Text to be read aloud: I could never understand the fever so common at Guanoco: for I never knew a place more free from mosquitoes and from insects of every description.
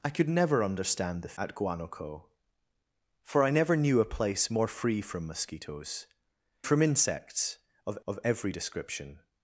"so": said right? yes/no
no